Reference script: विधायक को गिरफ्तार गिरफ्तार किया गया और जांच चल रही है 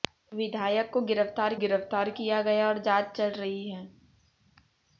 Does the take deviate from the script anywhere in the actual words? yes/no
no